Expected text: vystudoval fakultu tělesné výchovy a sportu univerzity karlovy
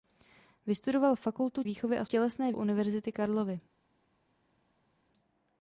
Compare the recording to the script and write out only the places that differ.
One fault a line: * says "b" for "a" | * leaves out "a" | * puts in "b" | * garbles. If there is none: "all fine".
* leaves out "tělesné"
* says "tělesné" for "sportu"